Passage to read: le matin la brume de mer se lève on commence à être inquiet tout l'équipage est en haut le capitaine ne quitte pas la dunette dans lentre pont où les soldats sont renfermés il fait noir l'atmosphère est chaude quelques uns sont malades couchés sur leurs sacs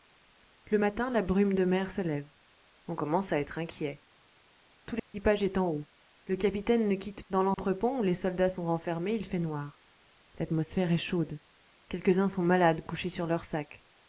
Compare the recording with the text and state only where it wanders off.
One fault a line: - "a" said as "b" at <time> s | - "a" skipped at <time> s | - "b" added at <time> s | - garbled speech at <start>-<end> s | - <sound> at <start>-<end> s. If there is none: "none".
- dropout at 5.0-5.1 s
- "pas la dunette" skipped at 7.2 s
- dropout at 7.5-7.6 s